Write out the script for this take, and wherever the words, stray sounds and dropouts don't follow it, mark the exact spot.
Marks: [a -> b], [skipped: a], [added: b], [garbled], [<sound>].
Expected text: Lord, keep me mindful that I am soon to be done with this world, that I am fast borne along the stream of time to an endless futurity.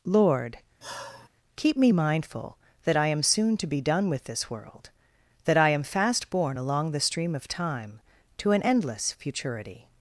Lord, [sigh] keep me mindful that I am soon to be done with this world, that I am fast borne along the stream of time to an endless futurity.